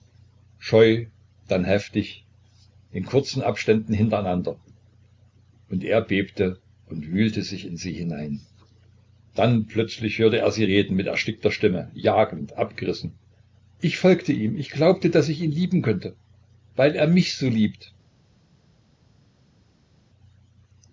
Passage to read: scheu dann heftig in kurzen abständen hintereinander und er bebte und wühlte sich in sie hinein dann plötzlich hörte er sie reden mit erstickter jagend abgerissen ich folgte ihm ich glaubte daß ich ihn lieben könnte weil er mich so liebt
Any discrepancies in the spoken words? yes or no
yes